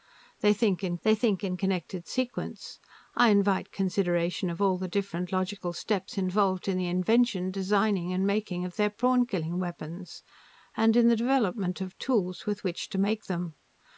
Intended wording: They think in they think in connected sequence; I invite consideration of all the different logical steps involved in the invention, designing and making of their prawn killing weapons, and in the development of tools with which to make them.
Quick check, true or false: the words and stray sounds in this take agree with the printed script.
true